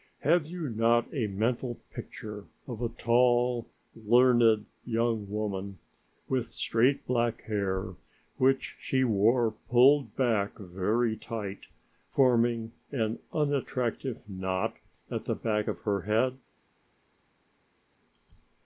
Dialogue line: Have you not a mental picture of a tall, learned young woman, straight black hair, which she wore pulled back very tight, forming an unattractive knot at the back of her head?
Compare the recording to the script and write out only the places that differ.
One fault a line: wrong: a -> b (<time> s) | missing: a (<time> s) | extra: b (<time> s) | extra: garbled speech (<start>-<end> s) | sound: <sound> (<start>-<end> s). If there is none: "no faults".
extra: with (6.3 s)